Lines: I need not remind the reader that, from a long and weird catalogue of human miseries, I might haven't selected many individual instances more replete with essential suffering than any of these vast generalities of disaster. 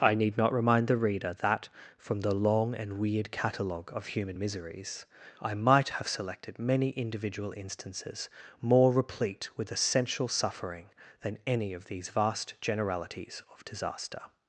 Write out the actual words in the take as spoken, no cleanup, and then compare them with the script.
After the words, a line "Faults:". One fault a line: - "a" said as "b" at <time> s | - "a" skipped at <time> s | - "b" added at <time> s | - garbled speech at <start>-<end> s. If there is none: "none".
I need not remind the reader that, from the long and weird catalogue of human miseries, I might have selected many individual instances more replete with essential suffering than any of these vast generalities of disaster.
Faults:
- "a" said as "the" at 2.2 s
- "haven't" said as "have" at 5.9 s